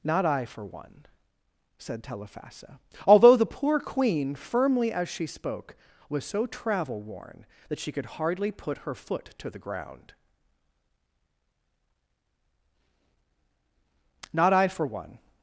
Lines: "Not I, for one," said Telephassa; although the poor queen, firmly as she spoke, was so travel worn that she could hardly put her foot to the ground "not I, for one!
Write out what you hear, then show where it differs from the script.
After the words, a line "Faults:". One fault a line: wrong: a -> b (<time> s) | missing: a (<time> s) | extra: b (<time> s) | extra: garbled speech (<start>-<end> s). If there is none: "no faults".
"Not I, for one," said Telephassa; although the poor queen, firmly as she spoke, was so travel worn that she could hardly put her foot to the ground "not I, for one!
Faults:
no faults